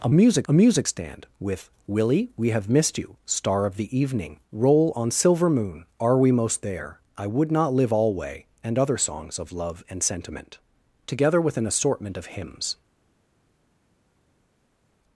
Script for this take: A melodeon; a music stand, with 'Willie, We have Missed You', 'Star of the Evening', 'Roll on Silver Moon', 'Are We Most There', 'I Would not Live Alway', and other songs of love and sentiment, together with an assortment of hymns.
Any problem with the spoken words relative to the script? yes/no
yes